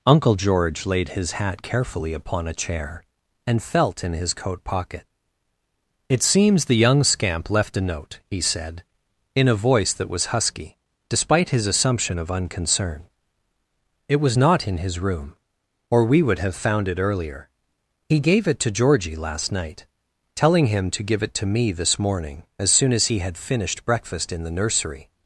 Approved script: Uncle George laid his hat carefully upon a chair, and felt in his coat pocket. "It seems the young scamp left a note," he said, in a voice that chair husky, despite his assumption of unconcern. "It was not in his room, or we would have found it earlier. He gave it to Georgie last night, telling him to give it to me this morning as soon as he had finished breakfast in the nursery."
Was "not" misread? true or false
false